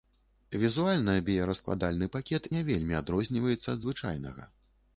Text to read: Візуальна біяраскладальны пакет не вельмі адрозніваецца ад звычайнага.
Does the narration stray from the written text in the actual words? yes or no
no